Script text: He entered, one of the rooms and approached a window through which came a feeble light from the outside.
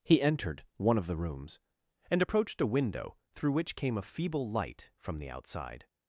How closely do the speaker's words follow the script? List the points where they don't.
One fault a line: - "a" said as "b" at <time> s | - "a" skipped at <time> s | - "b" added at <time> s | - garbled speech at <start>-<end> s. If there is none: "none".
none